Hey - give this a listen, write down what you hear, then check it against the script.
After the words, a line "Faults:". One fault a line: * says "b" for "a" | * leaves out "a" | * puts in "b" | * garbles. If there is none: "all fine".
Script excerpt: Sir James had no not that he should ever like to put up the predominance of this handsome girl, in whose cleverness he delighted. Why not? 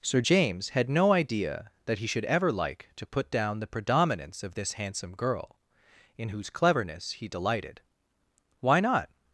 Sir James had no idea that he should ever like to put down the predominance of this handsome girl, in whose cleverness he delighted. Why not?
Faults:
* says "idea" for "not"
* says "down" for "up"